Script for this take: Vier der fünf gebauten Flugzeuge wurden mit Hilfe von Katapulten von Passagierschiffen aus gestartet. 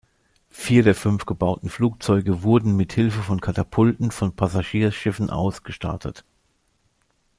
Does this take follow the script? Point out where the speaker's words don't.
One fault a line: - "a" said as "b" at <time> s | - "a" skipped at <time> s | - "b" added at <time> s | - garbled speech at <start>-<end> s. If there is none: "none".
none